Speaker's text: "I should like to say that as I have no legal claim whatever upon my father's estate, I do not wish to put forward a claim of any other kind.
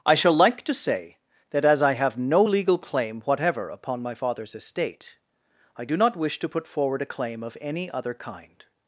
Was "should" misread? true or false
true